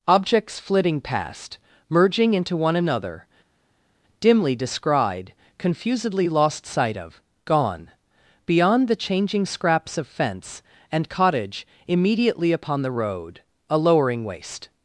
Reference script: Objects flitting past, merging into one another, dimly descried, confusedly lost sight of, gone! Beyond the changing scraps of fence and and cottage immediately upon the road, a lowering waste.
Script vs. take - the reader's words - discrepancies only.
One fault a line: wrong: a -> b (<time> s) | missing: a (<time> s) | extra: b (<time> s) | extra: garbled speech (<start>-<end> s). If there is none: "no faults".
missing: and (11.1 s)